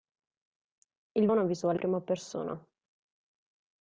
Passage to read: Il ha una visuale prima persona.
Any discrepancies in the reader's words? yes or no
no